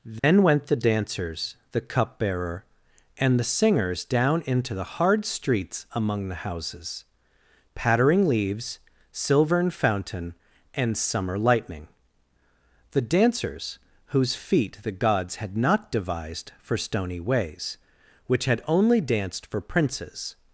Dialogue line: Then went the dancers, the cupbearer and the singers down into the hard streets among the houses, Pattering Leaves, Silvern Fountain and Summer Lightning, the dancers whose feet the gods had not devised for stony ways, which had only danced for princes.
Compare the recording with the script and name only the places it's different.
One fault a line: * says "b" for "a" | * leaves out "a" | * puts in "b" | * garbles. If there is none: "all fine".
all fine